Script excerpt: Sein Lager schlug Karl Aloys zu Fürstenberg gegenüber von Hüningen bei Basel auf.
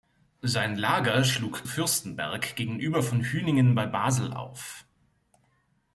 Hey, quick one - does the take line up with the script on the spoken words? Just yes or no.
no